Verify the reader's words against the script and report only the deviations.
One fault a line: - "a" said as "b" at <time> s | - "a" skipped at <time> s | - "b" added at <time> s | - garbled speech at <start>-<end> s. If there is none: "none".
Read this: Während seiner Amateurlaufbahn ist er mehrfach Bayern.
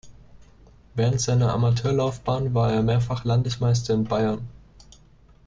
- "ist" said as "war" at 2.5 s
- "Landesmeister in" added at 3.2 s